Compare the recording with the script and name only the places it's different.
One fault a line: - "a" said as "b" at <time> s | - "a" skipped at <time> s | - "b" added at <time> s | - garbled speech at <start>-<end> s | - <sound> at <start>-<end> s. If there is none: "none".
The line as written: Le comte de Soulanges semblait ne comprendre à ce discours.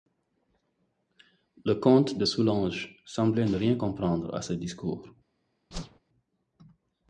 - "rien" added at 3.5 s
- whoosh at 5.7-6.0 s